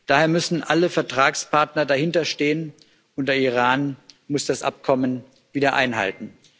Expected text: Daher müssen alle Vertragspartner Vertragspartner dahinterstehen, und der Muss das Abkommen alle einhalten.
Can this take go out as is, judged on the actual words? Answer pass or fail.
fail